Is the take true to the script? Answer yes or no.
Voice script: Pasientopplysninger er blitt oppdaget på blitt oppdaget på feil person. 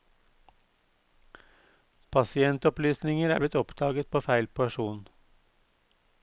no